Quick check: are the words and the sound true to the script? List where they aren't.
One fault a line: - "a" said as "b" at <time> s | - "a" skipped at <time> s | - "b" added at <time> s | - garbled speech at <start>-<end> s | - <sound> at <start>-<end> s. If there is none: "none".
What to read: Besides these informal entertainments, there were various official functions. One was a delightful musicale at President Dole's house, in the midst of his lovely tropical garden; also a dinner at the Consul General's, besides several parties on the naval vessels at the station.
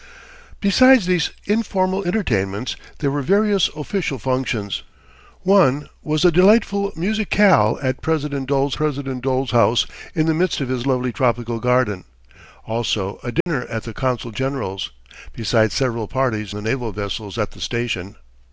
- "President Dole's" added at 8.7 s
- dropout at 13.4-13.5 s
- "on" skipped at 16.5 s